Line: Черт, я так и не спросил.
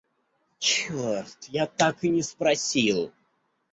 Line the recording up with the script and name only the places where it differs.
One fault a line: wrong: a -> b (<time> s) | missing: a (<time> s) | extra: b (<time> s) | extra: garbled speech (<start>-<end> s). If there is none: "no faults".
no faults